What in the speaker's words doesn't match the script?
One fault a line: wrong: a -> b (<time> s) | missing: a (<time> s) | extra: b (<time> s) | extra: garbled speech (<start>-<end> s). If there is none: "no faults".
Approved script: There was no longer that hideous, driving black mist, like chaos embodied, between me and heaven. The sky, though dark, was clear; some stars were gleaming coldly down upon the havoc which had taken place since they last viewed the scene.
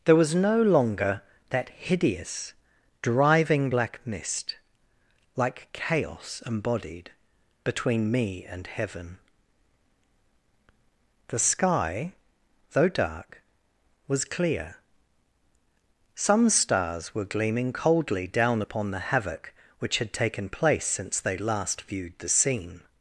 no faults